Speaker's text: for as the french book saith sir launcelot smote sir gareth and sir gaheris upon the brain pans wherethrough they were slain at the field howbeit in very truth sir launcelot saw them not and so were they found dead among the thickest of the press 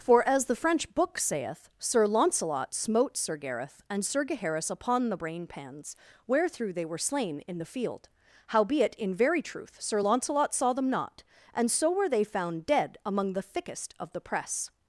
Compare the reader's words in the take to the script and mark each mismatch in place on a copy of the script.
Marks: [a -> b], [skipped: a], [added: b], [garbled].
for as the french book saith sir launcelot smote sir gareth and sir gaheris upon the brain pans wherethrough they were slain [at -> in] the field howbeit in very truth sir launcelot saw them not and so were they found dead among the thickest of the press